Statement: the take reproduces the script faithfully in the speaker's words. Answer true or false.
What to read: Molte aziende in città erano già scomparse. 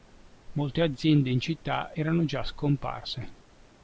true